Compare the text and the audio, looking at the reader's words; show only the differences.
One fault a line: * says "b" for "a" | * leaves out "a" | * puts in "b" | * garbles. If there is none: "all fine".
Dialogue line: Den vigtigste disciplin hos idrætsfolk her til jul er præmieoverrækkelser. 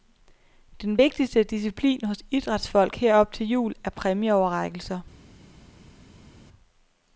* puts in "op"